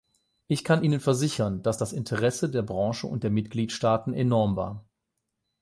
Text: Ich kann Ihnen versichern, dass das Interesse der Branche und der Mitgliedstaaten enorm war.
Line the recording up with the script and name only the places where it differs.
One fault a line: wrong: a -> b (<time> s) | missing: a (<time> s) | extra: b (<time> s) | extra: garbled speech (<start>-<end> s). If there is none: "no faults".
no faults